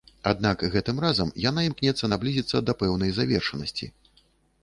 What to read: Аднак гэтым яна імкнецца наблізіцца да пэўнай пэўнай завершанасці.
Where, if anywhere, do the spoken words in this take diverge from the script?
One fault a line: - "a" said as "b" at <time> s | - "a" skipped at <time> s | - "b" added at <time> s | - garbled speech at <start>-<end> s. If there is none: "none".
- "разам" added at 1.0 s
- "пэўнай" skipped at 3.1 s